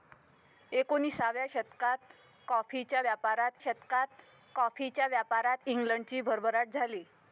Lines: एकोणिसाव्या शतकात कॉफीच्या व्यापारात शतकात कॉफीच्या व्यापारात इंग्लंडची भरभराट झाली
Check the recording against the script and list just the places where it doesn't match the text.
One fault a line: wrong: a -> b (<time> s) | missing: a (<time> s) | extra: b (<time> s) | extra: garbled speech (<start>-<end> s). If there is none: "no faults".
no faults